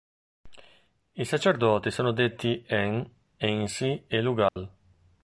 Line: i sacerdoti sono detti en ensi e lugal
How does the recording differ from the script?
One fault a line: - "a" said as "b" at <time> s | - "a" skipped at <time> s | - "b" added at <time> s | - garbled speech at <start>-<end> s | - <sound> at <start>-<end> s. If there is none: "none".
- dropout at 4.5-4.6 s